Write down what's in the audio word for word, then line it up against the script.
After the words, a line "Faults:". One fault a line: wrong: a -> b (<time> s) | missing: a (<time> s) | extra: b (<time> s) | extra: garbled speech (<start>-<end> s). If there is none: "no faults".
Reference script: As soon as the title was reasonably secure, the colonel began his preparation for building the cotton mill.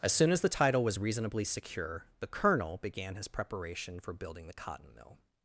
As soon as the title was reasonably secure, the colonel began his preparation for building the cotton mill.
Faults:
no faults